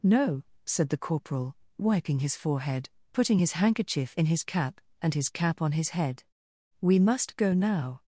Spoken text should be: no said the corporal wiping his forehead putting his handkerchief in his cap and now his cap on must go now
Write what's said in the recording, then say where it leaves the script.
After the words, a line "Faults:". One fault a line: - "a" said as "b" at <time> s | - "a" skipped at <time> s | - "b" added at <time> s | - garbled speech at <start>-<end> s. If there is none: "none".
no said the corporal wiping his forehead putting his handkerchief in his cap and his cap on his head we must go now
Faults:
- "now" skipped at 5.1 s
- "his head we" added at 5.7 s